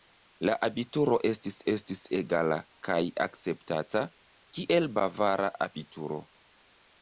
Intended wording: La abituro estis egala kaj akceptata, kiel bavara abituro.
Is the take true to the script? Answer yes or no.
no